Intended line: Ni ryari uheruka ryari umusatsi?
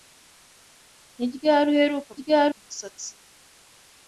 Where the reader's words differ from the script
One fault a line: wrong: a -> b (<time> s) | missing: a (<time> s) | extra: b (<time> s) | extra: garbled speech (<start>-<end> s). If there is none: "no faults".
no faults